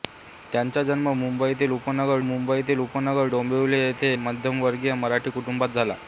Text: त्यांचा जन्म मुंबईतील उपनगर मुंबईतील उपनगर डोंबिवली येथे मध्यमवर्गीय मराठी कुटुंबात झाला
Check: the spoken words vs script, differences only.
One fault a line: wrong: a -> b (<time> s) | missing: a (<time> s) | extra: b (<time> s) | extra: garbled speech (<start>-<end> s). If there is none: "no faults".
no faults